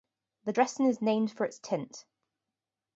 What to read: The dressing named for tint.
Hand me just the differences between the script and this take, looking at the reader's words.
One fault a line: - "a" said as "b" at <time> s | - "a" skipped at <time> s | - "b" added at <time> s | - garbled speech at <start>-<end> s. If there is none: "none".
- "is" added at 0.9 s
- "its" added at 1.4 s